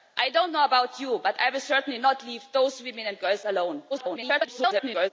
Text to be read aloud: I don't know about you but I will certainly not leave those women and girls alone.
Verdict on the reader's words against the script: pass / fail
fail